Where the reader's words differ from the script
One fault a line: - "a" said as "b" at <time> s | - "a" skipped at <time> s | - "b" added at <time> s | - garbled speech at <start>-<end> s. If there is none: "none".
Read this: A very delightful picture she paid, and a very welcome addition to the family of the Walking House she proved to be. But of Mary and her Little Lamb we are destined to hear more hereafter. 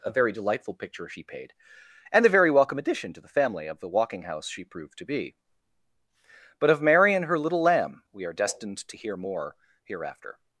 none